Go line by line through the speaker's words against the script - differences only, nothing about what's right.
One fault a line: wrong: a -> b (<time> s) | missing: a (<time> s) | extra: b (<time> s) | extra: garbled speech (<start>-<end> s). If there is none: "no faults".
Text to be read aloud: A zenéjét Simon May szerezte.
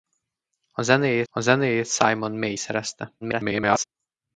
extra: a zenéjét (1.3 s)
extra: garbled speech (3.2-3.8 s)